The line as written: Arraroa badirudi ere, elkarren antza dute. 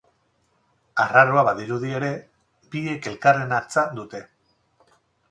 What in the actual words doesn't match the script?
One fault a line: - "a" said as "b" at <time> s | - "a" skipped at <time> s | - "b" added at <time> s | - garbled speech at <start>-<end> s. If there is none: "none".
- "biek" added at 2.8 s